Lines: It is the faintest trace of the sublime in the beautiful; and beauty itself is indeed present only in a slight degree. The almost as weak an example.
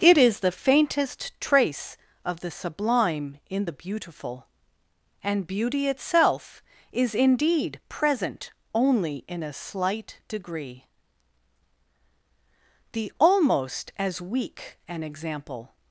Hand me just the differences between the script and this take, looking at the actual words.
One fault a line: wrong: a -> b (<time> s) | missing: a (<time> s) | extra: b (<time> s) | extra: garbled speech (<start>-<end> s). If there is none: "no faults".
no faults